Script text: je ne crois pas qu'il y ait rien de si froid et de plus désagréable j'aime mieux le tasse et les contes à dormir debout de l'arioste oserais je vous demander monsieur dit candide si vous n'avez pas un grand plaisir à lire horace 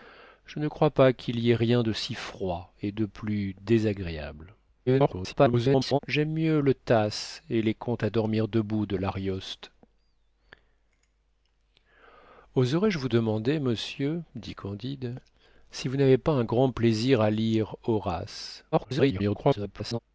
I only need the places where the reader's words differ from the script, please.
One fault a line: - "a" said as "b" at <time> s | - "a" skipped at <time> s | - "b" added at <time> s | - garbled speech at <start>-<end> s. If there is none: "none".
- garbled speech at 4.9-6.0 s
- garbled speech at 18.7-20.0 s